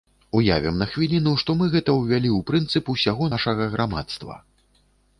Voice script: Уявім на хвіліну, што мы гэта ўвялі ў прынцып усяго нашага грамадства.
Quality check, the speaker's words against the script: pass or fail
pass